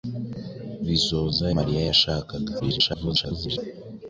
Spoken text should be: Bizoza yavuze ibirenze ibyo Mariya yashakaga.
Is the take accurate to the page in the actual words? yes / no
no